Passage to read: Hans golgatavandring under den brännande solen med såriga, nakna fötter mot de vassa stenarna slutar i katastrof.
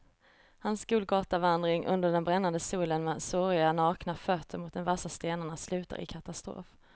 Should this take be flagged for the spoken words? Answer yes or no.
no